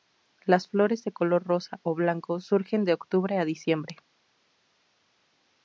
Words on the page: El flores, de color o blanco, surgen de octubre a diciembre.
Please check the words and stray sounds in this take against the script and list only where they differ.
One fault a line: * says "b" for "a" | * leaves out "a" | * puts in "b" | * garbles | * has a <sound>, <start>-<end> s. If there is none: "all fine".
* says "Las" for "El"
* puts in "rosa"